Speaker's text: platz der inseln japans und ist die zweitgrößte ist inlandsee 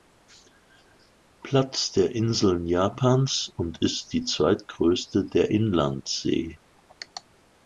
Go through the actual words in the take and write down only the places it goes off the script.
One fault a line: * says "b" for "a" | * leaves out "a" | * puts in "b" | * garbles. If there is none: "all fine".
* says "der" for "ist"